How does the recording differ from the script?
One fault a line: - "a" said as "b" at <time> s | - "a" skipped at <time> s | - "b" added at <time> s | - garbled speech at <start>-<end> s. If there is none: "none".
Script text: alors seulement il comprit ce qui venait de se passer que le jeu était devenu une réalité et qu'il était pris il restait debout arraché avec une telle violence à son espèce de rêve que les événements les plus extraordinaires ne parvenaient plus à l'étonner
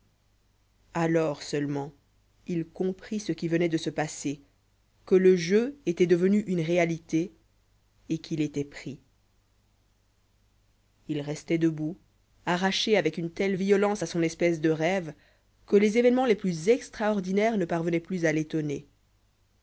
none